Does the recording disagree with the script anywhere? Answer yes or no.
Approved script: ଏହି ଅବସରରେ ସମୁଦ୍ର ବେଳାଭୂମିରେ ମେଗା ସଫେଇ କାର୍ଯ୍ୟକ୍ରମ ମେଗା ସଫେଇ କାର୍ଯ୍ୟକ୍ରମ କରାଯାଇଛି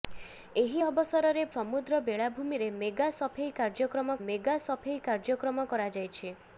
no